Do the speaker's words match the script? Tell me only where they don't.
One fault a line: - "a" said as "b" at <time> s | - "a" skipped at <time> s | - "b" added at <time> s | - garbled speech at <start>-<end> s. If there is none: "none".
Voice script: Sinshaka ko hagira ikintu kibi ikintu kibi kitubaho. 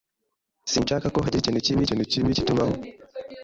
none